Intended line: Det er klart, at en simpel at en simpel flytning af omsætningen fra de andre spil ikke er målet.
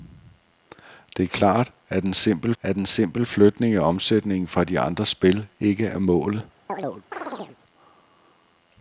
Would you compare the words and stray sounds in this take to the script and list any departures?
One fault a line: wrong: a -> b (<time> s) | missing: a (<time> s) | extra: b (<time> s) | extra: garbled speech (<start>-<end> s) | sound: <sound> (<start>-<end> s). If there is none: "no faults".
sound: chirp (6.7-7.6 s)